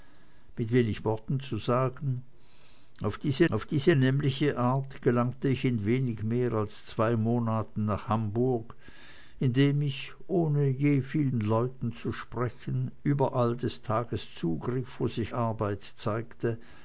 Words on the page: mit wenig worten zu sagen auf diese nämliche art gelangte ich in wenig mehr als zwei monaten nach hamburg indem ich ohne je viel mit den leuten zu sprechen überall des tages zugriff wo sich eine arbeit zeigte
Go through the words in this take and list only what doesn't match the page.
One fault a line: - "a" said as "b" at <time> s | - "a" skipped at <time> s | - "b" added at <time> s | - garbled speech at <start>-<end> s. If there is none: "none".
- "auf diese" added at 3.5 s
- "mit" skipped at 11.3 s
- "eine" skipped at 15.3 s